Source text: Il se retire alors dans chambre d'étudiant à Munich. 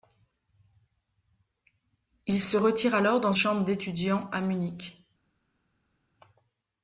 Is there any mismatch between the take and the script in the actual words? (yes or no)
no